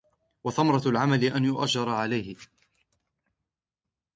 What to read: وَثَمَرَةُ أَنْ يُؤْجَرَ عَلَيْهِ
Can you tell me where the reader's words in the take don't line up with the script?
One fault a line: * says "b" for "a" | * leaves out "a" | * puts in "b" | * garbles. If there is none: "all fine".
* puts in "الْعَمَلِ"